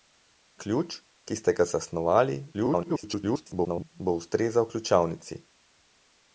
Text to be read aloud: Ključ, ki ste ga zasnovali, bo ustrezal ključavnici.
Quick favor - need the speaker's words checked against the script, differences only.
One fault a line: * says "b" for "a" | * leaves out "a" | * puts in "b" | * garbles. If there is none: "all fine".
* garbles